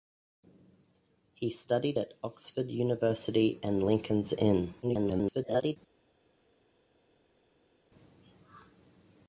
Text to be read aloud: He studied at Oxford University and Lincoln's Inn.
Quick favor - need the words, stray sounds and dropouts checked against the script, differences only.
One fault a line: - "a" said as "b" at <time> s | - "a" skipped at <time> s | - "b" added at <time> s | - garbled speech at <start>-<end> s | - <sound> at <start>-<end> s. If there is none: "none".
- garbled speech at 4.8-5.8 s